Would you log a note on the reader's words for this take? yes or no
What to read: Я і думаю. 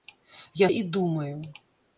no